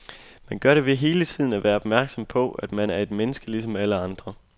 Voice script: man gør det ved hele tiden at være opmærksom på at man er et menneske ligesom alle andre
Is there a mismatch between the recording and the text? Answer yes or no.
no